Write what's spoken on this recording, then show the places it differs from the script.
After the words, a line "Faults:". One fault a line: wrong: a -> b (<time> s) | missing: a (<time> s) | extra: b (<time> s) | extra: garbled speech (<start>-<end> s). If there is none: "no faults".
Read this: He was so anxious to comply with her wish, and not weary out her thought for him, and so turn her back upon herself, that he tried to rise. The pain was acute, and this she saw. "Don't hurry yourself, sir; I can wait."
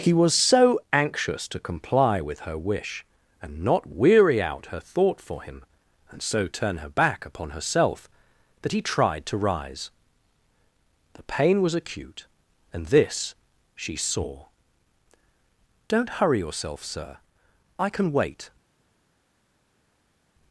He was so anxious to comply with her wish, and not weary out her thought for him, and so turn her back upon herself, that he tried to rise. The pain was acute, and this she saw. "Don't hurry yourself, sir; I can wait."
Faults:
no faults